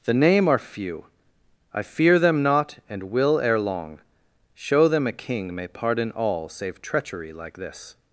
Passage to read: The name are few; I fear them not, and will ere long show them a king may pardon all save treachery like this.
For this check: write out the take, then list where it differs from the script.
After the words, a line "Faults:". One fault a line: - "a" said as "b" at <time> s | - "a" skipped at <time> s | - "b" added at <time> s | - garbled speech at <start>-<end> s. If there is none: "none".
The name are few; I fear them not, and will ere long show them a king may pardon all save treachery like this.
Faults:
none